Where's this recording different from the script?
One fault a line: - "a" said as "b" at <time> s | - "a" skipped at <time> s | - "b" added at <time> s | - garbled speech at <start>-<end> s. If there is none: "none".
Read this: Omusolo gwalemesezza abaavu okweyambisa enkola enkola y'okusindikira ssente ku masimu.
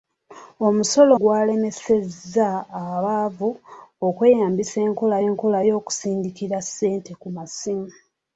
none